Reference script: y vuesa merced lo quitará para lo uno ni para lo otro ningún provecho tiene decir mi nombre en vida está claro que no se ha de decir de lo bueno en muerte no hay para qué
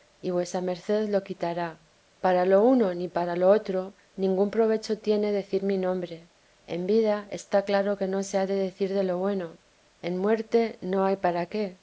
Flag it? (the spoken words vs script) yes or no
no